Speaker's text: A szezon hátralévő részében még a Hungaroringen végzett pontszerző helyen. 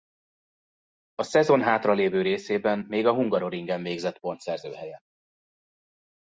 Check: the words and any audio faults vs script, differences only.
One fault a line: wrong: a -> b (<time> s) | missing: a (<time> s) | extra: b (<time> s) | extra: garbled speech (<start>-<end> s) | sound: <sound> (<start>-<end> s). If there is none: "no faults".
no faults